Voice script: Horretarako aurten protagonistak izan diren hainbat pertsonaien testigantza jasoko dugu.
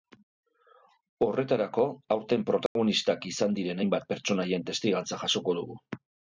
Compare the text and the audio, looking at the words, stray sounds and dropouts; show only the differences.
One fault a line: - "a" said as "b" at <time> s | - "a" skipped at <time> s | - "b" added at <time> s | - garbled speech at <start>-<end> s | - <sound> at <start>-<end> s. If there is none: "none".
- dropout at 2.7-2.8 s